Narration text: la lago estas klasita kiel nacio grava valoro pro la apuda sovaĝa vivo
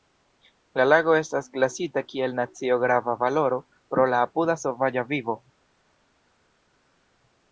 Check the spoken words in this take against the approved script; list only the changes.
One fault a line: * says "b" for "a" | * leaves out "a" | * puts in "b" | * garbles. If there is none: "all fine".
all fine